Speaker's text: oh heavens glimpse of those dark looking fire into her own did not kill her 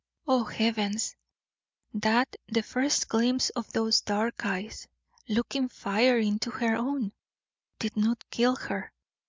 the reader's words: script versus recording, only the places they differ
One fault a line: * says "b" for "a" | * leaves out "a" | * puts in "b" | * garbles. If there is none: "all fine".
* puts in "that the first"
* puts in "eyes"